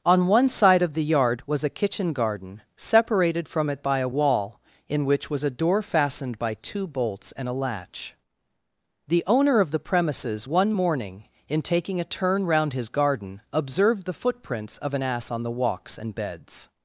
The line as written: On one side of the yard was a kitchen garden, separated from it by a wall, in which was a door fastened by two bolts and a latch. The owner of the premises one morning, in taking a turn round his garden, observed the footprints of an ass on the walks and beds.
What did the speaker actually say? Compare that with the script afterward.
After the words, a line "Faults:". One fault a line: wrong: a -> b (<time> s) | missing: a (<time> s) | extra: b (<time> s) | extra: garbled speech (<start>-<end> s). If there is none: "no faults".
On one side of the yard was a kitchen garden, separated from it by a wall, in which was a door fastened by two bolts and a latch. The owner of the premises one morning, in taking a turn round his garden, observed the footprints of an ass on the walks and beds.
Faults:
no faults